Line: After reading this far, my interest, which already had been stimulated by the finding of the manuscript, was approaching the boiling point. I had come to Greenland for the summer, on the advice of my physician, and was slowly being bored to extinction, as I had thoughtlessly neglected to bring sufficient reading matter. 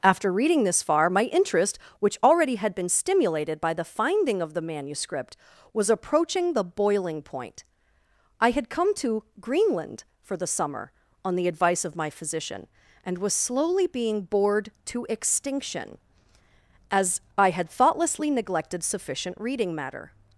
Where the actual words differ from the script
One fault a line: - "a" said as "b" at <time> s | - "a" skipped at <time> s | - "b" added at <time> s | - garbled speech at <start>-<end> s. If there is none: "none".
- "to bring" skipped at 18.8 s